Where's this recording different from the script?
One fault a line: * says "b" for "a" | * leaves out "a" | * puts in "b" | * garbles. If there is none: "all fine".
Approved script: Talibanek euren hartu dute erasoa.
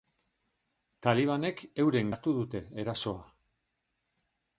all fine